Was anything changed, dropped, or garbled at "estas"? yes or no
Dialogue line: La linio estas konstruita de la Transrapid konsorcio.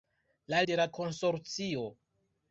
yes